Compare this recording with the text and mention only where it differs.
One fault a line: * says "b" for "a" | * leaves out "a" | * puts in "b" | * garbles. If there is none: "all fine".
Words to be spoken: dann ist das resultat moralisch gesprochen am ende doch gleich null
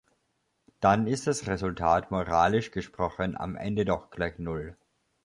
all fine